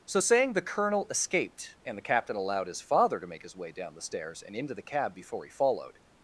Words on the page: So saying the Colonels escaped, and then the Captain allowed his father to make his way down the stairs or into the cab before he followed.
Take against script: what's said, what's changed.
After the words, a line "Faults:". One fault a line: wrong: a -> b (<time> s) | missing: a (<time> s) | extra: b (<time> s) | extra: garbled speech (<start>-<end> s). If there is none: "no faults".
So saying the Colonel escaped, and the Captain allowed his father to make his way down the stairs and into the cab before he followed.
Faults:
wrong: Colonels -> Colonel (0.6 s)
missing: then (2.0 s)
wrong: or -> and (4.4 s)